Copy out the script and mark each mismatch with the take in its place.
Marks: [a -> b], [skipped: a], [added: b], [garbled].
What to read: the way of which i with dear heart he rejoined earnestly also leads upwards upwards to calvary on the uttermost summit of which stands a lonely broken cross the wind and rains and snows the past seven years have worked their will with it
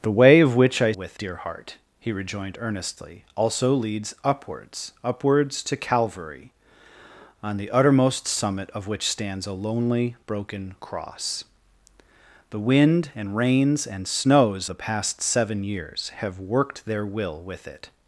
the way of which i with dear heart he rejoined earnestly also leads upwards upwards to calvary on the uttermost summit of which stands a lonely broken cross the wind and rains and snows the past seven years have worked their will with it